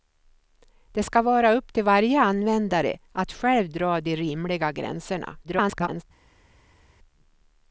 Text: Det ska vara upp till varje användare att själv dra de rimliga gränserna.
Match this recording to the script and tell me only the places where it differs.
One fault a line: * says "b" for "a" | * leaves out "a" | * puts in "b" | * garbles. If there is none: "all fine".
* garbles